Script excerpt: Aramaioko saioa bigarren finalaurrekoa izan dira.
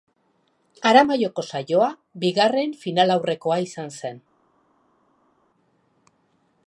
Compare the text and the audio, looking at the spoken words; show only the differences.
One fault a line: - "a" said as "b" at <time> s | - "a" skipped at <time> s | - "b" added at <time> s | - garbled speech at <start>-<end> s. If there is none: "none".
- "dira" said as "zen" at 4.0 s